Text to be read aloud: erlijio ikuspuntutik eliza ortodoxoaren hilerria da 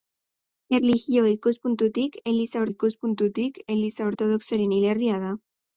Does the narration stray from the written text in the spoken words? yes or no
yes